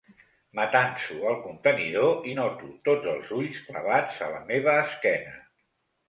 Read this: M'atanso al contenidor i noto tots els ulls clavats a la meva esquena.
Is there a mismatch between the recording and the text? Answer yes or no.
no